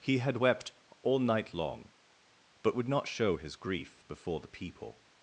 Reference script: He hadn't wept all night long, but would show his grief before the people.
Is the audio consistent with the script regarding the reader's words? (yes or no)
no